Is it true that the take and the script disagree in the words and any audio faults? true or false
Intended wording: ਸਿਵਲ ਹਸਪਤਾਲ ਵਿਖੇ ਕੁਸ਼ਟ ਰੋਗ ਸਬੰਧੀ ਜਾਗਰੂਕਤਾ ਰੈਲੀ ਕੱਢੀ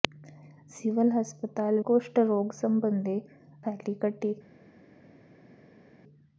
true